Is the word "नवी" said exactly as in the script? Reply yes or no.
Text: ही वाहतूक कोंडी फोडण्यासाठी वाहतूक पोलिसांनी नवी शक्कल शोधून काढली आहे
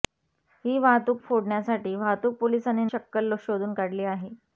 no